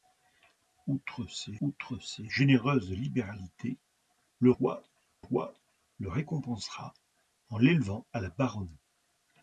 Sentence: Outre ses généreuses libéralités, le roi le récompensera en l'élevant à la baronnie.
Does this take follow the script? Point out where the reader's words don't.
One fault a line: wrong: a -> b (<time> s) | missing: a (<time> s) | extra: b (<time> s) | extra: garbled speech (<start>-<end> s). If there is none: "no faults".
extra: outre ses (1.6 s)
extra: roi (5.2 s)